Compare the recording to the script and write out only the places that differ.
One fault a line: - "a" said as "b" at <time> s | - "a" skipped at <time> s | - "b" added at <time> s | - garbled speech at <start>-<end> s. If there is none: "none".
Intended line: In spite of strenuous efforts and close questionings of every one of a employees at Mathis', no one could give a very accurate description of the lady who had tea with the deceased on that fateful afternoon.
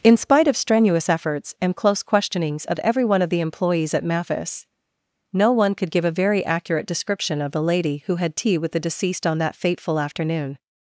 - "a" said as "the" at 3.3 s